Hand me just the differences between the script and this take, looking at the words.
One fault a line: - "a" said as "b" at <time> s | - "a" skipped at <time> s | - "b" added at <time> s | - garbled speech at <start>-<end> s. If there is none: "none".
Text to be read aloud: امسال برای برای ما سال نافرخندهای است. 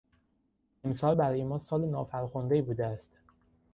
- "برای" skipped at 1.4 s
- "بوده" added at 2.6 s